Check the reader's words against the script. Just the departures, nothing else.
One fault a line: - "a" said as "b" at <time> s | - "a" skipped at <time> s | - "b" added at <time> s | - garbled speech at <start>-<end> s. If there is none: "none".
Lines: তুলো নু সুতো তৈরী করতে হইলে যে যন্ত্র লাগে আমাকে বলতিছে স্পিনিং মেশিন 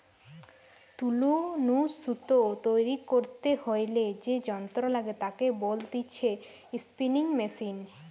- "আমাকে" said as "তাকে" at 5.2 s